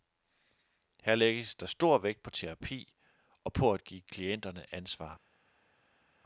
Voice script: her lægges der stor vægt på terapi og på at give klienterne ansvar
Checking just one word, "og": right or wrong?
right